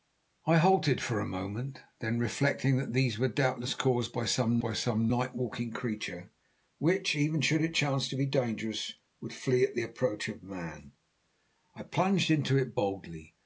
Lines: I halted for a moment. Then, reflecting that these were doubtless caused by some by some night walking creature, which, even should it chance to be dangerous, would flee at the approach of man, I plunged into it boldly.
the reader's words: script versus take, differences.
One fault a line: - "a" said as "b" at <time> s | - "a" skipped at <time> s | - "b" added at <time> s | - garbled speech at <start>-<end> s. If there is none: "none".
none